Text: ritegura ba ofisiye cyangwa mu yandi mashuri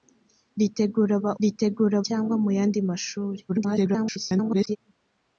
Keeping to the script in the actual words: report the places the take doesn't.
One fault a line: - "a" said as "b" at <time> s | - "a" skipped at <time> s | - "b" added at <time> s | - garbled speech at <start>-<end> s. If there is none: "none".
- "ofisiye" said as "ritegura" at 1.4 s
- garbled speech at 3.5-4.8 s